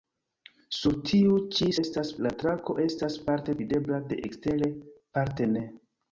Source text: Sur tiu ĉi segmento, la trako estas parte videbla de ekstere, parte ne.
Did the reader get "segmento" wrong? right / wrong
wrong